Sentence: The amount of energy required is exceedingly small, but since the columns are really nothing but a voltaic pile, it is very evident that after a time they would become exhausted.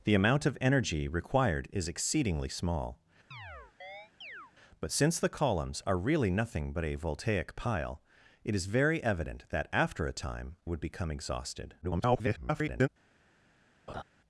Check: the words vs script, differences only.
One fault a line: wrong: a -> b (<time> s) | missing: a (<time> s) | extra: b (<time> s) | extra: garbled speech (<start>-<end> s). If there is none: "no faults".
missing: they (10.6 s)
extra: garbled speech (11.8-12.9 s)